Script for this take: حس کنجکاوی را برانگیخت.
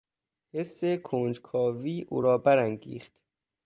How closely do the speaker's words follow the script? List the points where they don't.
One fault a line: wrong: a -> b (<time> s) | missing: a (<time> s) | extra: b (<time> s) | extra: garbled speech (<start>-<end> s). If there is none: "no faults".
extra: او (2.1 s)